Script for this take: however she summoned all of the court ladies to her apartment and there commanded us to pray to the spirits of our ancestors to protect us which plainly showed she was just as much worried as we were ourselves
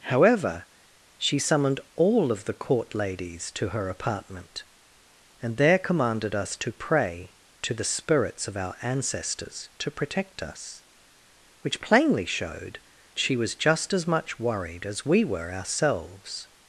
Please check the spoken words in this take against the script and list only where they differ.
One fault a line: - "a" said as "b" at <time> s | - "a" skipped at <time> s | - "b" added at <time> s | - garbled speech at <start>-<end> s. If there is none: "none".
none